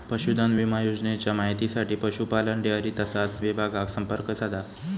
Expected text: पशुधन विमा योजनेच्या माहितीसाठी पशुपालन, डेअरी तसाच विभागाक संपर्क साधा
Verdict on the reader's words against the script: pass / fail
pass